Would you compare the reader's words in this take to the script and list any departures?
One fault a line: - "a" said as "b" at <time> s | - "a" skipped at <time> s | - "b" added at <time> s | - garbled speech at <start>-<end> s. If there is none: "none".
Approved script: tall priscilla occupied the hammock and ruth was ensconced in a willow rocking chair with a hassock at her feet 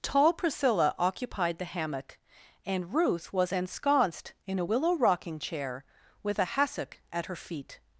none